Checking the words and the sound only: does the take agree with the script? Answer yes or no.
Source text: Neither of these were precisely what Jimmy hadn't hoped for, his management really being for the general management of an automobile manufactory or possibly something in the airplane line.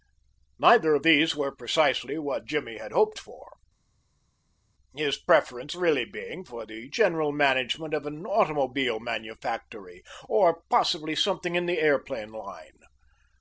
no